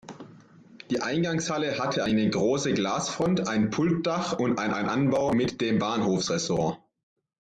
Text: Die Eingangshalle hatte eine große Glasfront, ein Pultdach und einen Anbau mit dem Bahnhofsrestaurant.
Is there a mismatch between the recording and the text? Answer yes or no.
yes